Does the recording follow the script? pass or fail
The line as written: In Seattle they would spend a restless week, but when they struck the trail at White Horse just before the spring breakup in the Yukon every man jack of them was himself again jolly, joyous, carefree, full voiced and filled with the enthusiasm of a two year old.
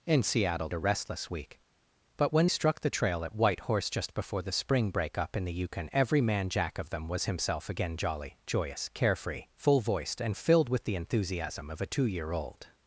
fail